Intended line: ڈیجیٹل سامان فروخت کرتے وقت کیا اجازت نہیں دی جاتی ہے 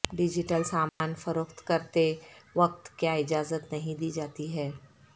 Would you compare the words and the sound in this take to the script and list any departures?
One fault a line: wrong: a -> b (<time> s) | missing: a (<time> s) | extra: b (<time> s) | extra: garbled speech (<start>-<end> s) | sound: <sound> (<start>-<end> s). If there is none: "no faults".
sound: dropout (0.9-1.0 s)